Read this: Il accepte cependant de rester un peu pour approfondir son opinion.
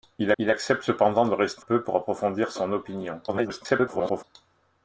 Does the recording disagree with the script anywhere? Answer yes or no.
yes